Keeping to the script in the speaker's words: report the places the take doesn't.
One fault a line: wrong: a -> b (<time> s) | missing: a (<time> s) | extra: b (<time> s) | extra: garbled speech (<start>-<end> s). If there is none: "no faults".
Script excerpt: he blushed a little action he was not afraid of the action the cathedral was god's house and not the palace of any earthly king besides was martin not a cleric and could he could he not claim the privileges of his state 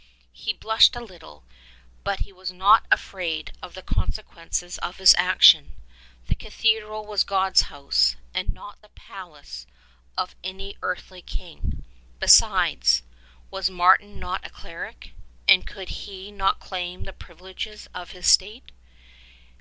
wrong: action -> but (2.0 s)
extra: consequences of his (3.8 s)
missing: could he (16.3 s)